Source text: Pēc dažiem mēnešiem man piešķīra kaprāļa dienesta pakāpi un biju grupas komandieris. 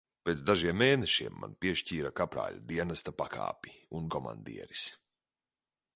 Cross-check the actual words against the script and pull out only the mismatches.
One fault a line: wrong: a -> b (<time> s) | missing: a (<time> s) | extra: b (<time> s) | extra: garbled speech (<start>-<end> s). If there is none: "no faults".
missing: biju grupas (4.1 s)